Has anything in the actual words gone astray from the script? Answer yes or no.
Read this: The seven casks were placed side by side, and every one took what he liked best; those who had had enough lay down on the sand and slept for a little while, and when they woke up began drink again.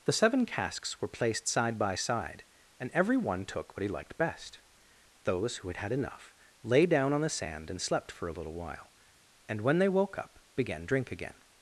no